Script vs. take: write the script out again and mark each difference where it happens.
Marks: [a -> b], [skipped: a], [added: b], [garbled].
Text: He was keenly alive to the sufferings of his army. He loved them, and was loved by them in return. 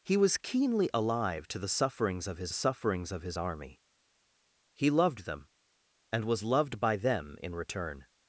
He was keenly alive to the sufferings of his [added: sufferings of his] army. He loved them, and was loved by them in return.